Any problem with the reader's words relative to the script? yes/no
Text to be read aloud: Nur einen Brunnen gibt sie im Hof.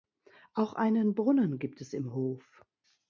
yes